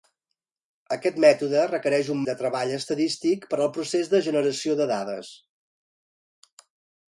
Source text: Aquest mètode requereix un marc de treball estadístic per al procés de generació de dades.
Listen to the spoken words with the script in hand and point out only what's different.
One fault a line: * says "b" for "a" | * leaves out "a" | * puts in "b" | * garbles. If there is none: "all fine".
* leaves out "marc"